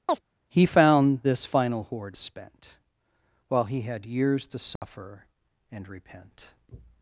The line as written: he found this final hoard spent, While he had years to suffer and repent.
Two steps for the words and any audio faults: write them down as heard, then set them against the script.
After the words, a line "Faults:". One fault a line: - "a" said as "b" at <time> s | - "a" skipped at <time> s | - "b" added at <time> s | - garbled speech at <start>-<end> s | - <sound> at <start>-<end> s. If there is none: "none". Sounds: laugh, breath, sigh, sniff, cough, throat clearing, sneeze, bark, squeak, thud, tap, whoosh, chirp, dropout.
he found this final hoard spent, While he had years to suffer and repent.
Faults:
- chirp at 0.1-0.2 s
- dropout at 4.8-4.8 s